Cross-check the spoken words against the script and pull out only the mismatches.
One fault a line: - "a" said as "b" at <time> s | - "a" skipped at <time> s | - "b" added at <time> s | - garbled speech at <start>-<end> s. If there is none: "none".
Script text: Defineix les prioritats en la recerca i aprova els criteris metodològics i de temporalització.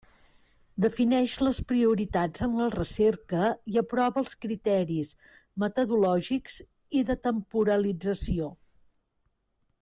none